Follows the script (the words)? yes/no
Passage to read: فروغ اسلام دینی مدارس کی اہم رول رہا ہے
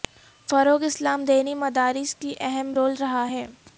yes